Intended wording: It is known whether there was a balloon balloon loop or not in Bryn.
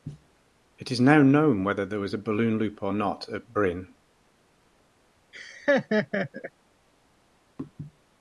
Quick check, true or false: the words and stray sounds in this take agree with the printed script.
false